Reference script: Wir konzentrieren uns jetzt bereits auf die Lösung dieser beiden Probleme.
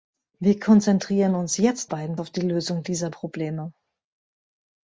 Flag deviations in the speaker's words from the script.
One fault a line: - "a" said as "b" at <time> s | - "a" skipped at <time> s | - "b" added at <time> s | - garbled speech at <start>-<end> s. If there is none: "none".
- "bereits" said as "beiden" at 1.8 s
- "beiden" skipped at 3.1 s